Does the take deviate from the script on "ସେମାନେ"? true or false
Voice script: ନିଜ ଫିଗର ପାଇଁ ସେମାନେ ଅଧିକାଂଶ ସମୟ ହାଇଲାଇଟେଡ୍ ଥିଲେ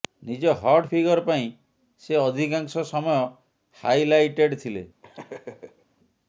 true